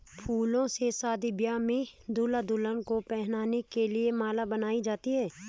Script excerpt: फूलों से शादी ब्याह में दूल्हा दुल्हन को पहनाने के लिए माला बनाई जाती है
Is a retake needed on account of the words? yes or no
no